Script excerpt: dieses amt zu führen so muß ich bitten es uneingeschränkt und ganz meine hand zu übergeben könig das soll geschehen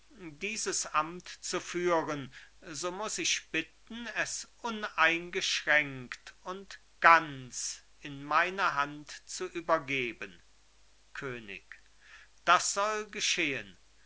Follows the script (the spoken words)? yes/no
no